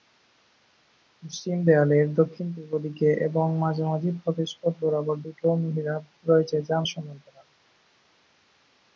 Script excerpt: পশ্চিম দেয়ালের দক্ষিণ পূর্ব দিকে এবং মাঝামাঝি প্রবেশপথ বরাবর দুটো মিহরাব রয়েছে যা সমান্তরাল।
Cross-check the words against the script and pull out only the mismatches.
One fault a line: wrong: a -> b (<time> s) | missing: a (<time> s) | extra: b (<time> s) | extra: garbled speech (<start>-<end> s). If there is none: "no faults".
no faults